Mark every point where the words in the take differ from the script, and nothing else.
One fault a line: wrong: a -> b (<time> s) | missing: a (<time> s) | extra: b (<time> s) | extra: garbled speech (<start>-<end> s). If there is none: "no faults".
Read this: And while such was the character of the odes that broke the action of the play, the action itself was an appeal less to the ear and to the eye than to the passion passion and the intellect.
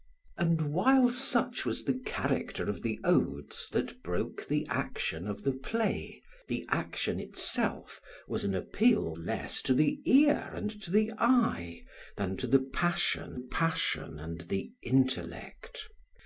no faults